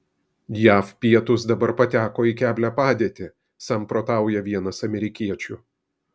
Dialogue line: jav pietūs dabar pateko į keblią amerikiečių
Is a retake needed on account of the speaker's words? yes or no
yes